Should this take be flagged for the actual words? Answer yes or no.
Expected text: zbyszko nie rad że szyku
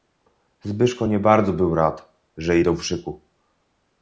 yes